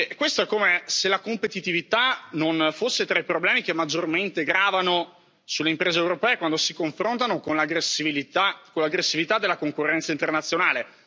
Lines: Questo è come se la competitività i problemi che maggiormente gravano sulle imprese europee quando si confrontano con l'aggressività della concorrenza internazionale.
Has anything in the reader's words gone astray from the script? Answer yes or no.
yes